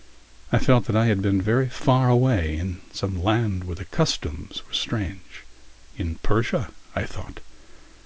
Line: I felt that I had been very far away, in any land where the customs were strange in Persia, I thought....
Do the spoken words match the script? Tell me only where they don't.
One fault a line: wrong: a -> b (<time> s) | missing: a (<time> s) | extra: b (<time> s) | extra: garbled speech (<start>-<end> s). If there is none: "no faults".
wrong: any -> some (2.9 s)